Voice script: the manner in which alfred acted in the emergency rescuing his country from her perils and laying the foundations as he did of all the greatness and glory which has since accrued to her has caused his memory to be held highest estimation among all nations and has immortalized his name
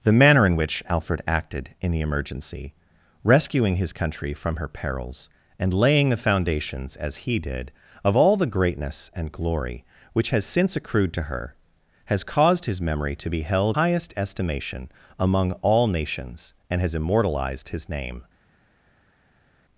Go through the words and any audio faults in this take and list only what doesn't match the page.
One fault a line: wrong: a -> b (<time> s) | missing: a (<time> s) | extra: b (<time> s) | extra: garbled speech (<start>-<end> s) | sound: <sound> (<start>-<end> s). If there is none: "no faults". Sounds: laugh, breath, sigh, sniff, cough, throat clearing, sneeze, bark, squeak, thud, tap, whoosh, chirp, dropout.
no faults